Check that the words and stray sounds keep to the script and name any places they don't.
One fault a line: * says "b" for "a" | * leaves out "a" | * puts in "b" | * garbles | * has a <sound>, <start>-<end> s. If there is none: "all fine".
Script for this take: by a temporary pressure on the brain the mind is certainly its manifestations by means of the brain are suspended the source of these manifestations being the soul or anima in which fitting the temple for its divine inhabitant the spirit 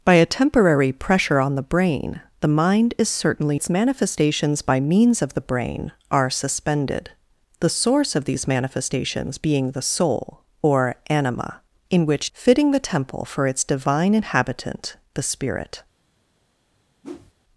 * has a whoosh, 17.0-17.3 s